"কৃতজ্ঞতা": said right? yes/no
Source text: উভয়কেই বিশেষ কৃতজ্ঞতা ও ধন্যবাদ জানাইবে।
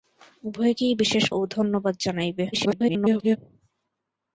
no